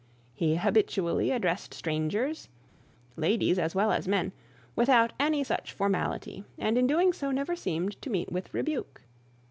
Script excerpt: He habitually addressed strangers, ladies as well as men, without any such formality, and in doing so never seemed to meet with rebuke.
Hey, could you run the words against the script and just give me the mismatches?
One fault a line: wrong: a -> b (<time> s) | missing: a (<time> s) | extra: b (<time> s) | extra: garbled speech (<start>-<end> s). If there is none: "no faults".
no faults